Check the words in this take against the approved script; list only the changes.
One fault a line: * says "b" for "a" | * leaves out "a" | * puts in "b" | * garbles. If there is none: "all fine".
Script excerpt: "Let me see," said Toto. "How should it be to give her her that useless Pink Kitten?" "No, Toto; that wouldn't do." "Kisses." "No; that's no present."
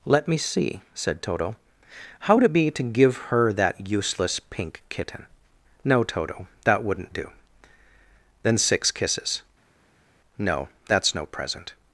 * says "would" for "should"
* leaves out "her"
* puts in "Then six"